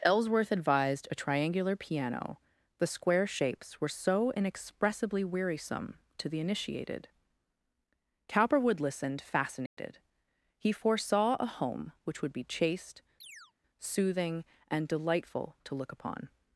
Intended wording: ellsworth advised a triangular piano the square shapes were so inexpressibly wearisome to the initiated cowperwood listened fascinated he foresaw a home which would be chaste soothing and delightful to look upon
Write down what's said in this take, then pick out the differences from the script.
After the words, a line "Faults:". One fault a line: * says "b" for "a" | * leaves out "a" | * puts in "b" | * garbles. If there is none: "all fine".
ellsworth advised a triangular piano the square shapes were so inexpressibly wearisome to the initiated cowperwood listened fascinated he foresaw a home which would be chaste soothing and delightful to look upon
Faults:
all fine